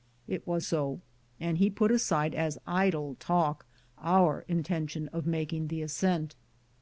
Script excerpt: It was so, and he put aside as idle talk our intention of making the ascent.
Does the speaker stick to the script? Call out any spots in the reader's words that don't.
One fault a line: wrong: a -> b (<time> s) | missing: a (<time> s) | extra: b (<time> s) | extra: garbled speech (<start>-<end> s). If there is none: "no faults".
no faults